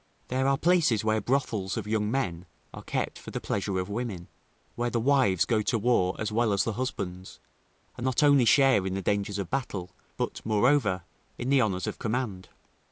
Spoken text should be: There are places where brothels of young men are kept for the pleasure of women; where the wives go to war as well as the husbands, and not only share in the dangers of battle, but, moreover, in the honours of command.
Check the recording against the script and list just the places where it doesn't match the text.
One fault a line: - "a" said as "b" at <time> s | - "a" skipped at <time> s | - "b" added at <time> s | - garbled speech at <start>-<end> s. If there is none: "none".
none